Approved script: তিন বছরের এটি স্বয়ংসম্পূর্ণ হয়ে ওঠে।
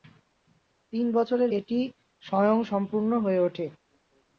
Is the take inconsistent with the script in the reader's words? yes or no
no